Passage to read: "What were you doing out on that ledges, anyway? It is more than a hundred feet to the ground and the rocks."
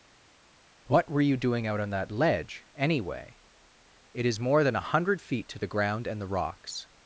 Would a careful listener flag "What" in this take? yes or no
no